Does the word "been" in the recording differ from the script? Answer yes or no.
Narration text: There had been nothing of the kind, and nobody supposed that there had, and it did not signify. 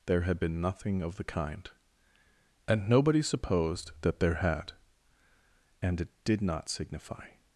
no